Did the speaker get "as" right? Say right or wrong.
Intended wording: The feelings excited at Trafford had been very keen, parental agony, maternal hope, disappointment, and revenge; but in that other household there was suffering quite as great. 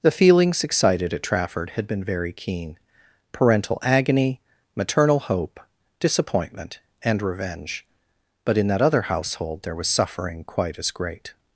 right